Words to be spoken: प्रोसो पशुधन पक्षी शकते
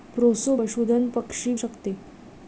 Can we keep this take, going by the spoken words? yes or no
yes